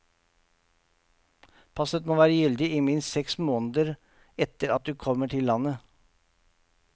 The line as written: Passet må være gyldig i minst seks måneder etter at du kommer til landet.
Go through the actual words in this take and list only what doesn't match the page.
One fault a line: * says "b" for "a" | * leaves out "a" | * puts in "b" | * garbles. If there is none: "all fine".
all fine